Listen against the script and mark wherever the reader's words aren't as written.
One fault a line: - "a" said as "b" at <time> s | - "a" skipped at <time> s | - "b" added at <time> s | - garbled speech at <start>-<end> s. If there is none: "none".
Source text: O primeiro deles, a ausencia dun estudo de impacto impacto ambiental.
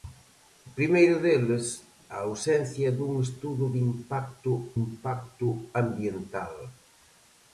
none